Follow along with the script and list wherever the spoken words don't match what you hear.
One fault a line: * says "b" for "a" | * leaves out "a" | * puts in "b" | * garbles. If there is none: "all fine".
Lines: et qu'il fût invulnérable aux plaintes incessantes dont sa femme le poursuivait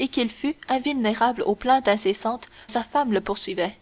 * leaves out "dont"